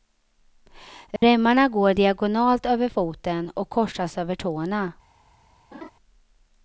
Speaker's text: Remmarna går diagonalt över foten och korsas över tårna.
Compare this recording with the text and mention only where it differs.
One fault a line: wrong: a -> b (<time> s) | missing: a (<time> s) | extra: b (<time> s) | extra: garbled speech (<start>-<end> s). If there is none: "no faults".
no faults